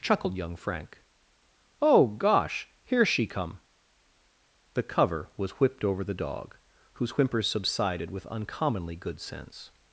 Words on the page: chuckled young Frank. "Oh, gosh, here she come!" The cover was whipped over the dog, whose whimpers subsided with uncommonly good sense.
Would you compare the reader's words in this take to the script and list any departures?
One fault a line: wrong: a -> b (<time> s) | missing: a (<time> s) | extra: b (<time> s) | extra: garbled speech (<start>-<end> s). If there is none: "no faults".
no faults